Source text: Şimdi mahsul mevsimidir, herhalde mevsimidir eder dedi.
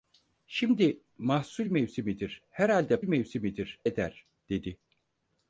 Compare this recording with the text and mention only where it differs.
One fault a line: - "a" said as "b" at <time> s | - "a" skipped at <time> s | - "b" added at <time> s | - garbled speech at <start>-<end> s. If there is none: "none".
none